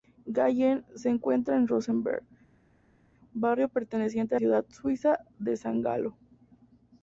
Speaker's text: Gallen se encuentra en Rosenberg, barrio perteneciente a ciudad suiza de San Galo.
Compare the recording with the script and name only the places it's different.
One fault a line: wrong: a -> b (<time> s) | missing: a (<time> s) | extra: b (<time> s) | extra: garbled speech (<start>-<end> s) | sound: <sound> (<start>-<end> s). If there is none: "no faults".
no faults